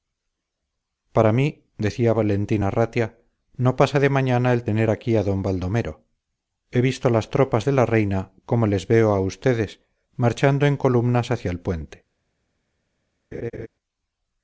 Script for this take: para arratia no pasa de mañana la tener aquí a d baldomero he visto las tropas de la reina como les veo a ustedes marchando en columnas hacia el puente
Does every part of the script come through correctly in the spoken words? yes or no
no